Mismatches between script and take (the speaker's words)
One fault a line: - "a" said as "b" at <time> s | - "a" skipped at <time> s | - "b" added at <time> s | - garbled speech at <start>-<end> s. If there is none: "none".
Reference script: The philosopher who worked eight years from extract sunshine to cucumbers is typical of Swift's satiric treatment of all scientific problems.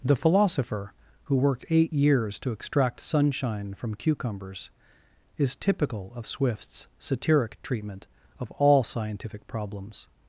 - "from" said as "to" at 2.4 s
- "to" said as "from" at 3.8 s